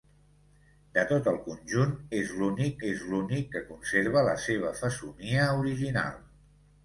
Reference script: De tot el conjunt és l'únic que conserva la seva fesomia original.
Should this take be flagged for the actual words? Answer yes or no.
yes